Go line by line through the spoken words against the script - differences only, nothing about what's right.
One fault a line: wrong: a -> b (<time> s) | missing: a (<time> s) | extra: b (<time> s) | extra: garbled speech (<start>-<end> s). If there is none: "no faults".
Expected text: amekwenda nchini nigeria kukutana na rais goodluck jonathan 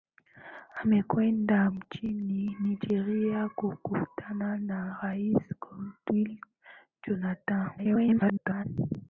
extra: garbled speech (7.8-8.7 s)